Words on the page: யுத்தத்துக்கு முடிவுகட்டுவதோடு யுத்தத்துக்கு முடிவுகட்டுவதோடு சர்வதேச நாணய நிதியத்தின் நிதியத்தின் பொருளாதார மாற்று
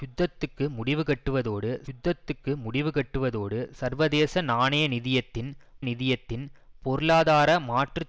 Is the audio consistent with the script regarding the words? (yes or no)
yes